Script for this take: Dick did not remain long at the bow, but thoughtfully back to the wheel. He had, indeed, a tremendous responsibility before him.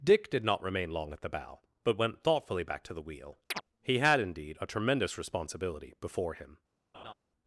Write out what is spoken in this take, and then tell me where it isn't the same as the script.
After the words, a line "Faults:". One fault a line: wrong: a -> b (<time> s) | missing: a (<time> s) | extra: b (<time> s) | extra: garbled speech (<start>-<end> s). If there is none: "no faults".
Dick did not remain long at the bow, but went thoughtfully back to the wheel. He had, indeed, a tremendous responsibility before him.
Faults:
extra: went (2.0 s)